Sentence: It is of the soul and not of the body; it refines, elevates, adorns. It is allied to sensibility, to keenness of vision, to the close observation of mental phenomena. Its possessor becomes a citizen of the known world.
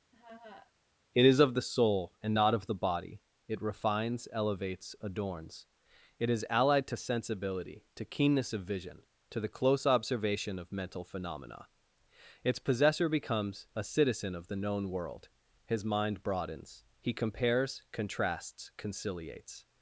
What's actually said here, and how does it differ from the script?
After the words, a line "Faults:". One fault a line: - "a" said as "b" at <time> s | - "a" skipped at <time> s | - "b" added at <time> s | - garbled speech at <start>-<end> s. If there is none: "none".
It is of the soul and not of the body; it refines, elevates, adorns. It is allied to sensibility, to keenness of vision, to the close observation of mental phenomena. Its possessor becomes a citizen of the known world. His mind broadens; he compares, contrasts, conciliates
Faults:
- "His mind broadens he compares contrasts conciliates" added at 15.7 s